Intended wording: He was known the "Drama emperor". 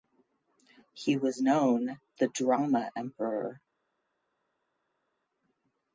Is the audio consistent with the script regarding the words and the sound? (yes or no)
yes